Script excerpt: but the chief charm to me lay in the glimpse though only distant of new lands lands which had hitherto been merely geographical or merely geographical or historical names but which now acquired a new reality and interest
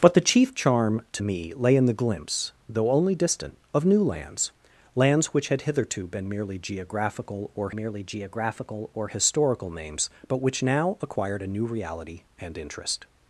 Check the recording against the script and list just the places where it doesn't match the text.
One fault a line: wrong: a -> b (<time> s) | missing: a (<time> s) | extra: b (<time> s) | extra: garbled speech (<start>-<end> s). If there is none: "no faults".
no faults